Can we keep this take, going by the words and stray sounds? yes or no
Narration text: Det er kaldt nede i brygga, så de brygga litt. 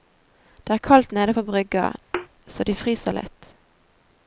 no